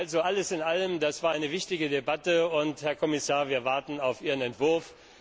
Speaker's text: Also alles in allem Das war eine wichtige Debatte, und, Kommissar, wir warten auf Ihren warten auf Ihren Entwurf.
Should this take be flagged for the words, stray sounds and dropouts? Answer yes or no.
yes